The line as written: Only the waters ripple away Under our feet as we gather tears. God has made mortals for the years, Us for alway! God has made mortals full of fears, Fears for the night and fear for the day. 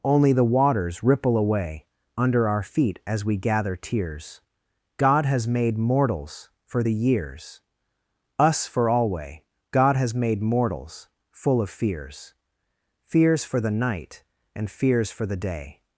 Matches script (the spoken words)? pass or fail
fail